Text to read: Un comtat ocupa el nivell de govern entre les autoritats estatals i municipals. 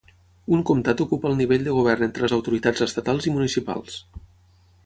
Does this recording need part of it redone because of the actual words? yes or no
no